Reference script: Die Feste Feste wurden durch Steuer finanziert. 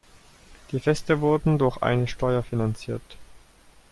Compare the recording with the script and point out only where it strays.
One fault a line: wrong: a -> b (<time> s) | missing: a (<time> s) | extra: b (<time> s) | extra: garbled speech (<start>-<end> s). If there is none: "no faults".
missing: Feste (1.2 s)
extra: eine (1.8 s)